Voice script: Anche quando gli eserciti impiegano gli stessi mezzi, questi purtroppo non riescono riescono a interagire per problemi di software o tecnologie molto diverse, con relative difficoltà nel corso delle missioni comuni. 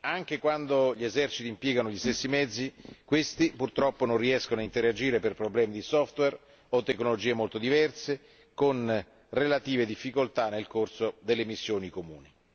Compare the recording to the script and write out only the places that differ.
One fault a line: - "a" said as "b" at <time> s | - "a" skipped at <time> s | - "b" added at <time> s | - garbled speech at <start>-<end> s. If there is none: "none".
- "riescono" skipped at 4.6 s